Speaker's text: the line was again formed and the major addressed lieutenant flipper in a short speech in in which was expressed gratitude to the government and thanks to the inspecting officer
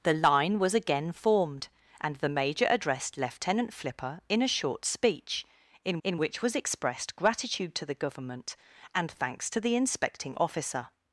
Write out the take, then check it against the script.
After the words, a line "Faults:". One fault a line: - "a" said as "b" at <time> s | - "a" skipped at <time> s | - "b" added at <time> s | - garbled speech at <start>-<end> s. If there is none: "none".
the line was again formed and the major addressed lieutenant flipper in a short speech in in which was expressed gratitude to the government and thanks to the inspecting officer
Faults:
none